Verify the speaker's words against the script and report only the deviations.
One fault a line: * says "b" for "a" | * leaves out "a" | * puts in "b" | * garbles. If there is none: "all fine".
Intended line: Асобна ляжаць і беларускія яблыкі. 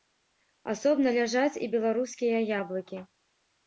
all fine